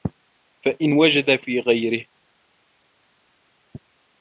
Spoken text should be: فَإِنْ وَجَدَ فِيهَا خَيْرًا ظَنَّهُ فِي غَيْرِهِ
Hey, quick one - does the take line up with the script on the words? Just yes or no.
no